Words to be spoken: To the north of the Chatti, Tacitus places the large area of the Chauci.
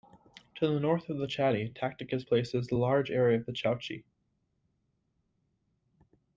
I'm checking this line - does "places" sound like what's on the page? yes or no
yes